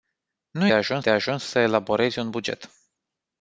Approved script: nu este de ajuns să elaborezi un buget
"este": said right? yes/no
no